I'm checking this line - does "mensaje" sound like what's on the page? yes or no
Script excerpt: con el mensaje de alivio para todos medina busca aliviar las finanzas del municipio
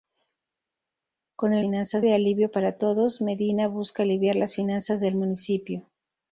no